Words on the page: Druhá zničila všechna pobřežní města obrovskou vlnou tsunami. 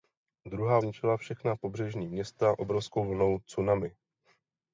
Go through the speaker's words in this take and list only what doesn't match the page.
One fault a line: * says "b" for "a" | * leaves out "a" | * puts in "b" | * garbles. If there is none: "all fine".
all fine